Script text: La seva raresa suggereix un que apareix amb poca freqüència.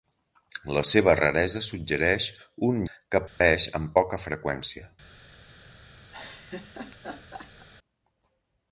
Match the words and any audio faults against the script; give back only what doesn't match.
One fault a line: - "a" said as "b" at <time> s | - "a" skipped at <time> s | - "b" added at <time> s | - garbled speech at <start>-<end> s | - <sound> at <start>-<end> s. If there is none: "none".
- dropout at 3.3-3.4 s
- laugh at 6.1-7.7 s